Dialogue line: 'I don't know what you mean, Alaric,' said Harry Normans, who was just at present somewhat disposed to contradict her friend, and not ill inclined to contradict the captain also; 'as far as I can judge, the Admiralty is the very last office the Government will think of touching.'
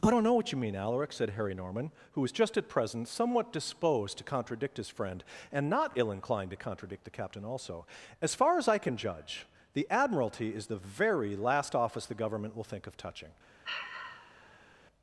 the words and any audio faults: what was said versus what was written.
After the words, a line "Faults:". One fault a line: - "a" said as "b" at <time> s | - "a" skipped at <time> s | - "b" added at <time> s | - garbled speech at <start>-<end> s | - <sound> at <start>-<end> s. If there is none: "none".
'I don't know what you mean, Alaric,' said Harry Norman, who was just at present somewhat disposed to contradict his friend, and not ill inclined to contradict the captain also; 'as far as I can judge, the Admiralty is the very last office the Government will think of touching.'
Faults:
- "Normans" said as "Norman" at 1.5 s
- "her" said as "his" at 4.8 s
- sigh at 13.6-14.8 s